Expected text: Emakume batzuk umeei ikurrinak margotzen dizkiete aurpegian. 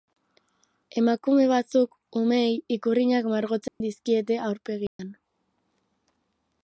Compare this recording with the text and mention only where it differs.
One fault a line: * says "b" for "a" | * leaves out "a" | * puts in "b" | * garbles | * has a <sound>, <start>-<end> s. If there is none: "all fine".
* has a dropout, 3.7-3.8 s
* has a dropout, 4.9-5.0 s